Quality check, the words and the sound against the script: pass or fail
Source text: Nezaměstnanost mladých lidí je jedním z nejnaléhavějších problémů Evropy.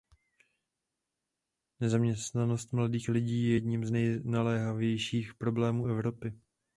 pass